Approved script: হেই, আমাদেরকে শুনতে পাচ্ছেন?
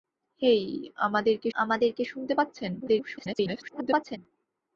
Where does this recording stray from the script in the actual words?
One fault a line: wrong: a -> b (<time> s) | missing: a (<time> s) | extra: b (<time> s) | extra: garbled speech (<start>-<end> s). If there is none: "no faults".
extra: আমাদেরকে (1.5 s)
extra: garbled speech (2.8-4.2 s)